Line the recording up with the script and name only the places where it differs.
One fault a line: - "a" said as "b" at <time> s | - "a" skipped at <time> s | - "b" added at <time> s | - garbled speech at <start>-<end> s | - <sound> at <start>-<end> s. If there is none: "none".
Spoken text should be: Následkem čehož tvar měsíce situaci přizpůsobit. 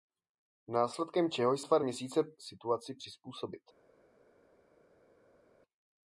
none